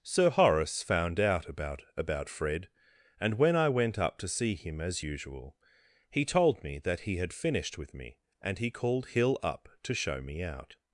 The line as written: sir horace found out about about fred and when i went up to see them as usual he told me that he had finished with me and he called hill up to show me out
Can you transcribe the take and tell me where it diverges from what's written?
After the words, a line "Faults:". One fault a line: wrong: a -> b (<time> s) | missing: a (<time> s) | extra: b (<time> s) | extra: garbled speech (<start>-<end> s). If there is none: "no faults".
sir horace found out about about fred and when i went up to see him as usual he told me that he had finished with me and he called hill up to show me out
Faults:
wrong: them -> him (4.5 s)